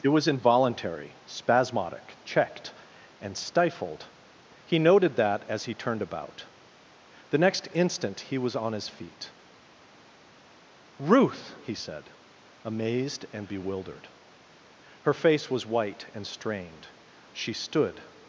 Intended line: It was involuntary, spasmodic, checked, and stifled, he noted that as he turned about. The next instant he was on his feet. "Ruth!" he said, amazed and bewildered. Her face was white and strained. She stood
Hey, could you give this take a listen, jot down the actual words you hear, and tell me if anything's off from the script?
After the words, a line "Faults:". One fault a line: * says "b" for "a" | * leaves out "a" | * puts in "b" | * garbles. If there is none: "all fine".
It was involuntary, spasmodic, checked, and stifled, he noted that as he turned about. The next instant he was on his feet. "Ruth!" he said, amazed and bewildered. Her face was white and strained. She stood
Faults:
all fine